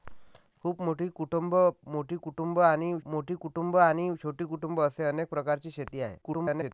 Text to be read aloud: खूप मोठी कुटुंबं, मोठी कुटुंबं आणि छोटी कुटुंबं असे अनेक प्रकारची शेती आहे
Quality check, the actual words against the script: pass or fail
fail